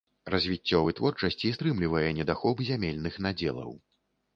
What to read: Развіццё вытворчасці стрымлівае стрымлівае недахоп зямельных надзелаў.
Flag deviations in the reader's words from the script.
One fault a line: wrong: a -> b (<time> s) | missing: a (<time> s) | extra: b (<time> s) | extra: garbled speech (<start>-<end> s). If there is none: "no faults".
missing: стрымлівае (2.1 s)